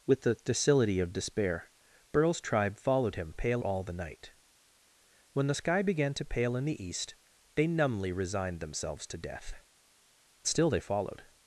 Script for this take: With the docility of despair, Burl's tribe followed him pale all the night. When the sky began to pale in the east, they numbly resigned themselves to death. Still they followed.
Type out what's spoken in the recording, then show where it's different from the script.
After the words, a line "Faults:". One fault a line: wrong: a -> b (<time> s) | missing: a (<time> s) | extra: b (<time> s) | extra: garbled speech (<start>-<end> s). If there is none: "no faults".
With the docility of despair, Burl's tribe followed him pale all the night. When the sky began to pale in the east, they numbly resigned themselves to death. Still they followed.
Faults:
no faults